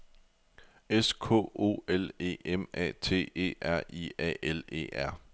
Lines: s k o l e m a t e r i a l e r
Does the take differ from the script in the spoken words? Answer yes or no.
no